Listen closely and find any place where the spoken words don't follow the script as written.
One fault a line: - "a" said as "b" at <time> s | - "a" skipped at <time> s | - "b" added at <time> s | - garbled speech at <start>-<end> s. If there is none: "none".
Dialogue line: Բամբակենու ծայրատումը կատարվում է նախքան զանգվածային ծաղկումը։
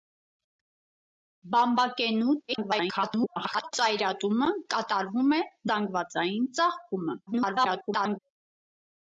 - garbled speech at 2.5-3.7 s
- "նախքան" skipped at 5.4 s
- garbled speech at 7.3-8.2 s